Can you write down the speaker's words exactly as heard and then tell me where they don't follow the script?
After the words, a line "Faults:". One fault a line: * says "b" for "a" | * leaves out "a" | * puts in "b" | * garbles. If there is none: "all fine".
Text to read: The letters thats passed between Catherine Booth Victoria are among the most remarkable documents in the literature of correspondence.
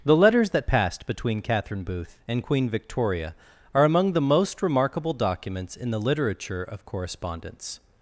The letters that passed between Catherine Booth and Queen Victoria are among the most remarkable documents in the literature of correspondence.
Faults:
* says "that" for "thats"
* puts in "and Queen"